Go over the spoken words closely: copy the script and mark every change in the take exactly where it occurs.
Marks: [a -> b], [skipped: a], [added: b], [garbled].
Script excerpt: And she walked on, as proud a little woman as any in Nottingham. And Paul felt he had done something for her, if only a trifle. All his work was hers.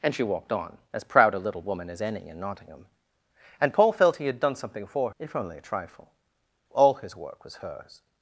And she walked on, as proud a little woman as any in Nottingham. And Paul felt he had done something for [skipped: her,] if only a trifle. All his work was hers.